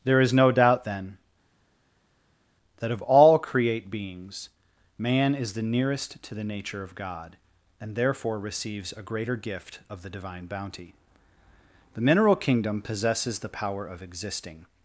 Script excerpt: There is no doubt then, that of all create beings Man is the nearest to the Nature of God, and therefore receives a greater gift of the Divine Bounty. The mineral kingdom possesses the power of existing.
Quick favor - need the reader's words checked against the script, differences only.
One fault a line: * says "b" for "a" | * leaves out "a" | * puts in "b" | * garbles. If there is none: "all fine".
all fine